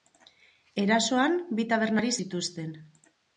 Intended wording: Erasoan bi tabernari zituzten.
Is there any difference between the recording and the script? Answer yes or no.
no